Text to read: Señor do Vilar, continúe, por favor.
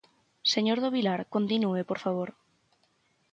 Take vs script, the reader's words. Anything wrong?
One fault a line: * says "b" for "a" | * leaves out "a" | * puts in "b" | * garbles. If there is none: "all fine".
all fine